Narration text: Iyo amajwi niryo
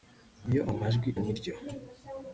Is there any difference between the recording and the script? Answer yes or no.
no